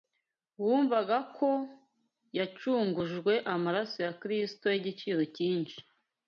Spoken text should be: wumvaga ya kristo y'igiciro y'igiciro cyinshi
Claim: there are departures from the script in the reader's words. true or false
true